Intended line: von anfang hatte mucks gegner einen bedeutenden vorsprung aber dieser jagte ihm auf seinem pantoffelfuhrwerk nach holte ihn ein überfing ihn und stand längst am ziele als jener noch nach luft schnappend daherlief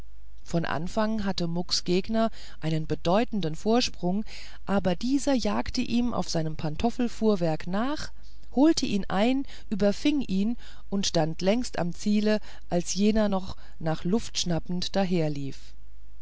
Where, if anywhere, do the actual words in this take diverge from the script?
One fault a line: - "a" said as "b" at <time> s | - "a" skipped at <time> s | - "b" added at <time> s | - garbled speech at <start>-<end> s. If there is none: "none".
none